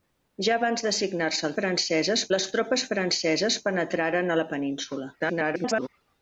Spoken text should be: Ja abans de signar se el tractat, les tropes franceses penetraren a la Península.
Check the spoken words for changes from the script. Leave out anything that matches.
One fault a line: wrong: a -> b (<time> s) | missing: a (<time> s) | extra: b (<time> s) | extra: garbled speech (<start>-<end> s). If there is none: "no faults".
wrong: tractat -> franceses (1.6 s)
extra: garbled speech (5.2-5.9 s)